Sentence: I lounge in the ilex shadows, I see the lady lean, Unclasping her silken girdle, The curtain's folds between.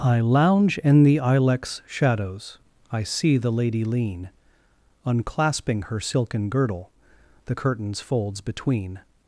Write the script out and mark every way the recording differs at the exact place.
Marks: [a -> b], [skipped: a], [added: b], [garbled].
I lounge in the ilex shadows, I see the lady lean, Unclasping her silken girdle, The curtain's folds between.